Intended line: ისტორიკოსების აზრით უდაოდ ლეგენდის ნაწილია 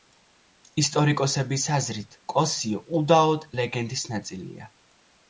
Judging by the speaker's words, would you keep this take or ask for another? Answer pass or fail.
fail